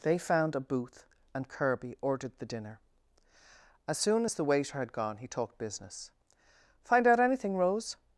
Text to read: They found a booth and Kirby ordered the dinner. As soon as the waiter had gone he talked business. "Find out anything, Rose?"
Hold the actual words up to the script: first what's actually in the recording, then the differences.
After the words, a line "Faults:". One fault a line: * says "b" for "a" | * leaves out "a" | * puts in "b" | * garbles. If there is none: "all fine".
They found a booth and Kirby ordered the dinner. As soon as the waiter had gone he talked business. "Find out anything, Rose?"
Faults:
all fine